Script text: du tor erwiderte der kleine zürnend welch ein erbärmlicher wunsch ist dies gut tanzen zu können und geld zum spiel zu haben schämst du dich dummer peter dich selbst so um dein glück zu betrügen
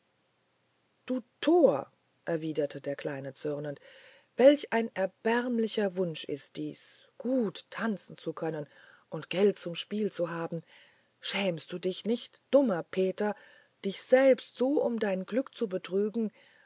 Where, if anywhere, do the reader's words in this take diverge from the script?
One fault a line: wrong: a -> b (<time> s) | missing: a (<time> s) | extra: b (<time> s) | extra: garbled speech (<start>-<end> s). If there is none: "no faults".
extra: nicht (12.1 s)